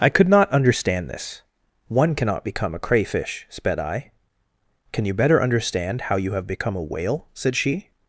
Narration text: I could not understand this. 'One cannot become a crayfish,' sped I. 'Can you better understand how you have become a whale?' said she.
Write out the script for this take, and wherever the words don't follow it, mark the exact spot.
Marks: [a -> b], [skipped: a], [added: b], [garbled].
I could not understand this. 'One cannot become a crayfish,' sped I. 'Can you better understand how you have become a whale?' said she.